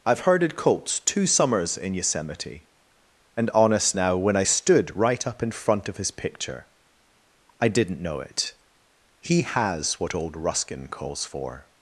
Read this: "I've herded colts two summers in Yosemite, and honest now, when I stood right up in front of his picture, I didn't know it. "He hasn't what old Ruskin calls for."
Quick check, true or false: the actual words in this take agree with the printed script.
false